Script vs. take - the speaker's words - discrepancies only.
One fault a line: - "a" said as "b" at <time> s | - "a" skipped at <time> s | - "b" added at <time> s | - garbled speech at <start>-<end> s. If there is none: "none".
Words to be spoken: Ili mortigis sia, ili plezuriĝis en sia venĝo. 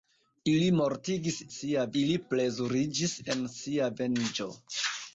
none